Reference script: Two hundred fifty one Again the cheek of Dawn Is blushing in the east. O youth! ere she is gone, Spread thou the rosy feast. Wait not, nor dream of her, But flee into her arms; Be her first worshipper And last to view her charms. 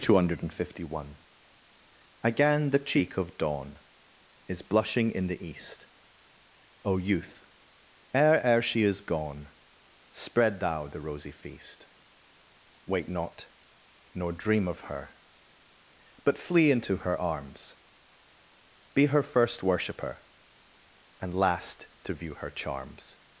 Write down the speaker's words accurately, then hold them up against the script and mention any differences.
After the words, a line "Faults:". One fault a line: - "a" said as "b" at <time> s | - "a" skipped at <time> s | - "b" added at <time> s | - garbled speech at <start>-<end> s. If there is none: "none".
Two hundred fifty one Again the cheek of Dawn Is blushing in the east. O youth! ere ere she is gone, Spread thou the rosy feast. Wait not, nor dream of her, But flee into her arms; Be her first worshipper And last to view her charms.
Faults:
- "ere" added at 8.4 s